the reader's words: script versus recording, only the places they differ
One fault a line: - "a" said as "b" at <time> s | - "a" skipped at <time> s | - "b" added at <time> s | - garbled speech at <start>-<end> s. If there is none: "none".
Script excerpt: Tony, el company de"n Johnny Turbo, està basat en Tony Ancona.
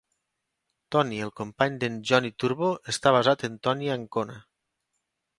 none